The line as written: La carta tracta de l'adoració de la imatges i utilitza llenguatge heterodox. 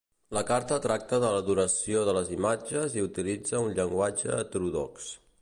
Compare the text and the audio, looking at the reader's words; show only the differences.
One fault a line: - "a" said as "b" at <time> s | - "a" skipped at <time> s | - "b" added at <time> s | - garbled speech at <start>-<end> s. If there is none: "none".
- "la" said as "les" at 2.2 s
- "un" added at 3.7 s